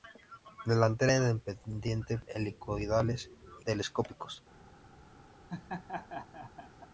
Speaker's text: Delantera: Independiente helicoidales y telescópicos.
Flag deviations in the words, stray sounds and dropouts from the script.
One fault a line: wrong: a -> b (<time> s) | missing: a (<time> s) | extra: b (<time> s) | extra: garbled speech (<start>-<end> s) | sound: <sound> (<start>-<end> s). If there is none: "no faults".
sound: laugh (5.5-6.9 s)